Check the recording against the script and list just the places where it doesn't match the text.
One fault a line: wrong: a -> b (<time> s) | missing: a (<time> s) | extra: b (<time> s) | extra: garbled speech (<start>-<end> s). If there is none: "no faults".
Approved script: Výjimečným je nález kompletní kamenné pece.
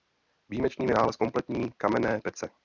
no faults